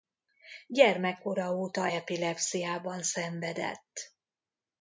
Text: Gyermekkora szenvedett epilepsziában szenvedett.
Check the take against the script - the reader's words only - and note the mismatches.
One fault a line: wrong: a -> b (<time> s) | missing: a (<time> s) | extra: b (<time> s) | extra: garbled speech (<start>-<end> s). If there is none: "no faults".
wrong: szenvedett -> óta (1.5 s)